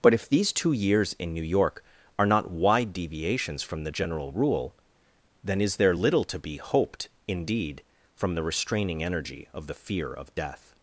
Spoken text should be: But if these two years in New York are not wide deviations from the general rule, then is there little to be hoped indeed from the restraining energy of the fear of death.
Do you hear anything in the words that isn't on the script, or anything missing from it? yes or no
no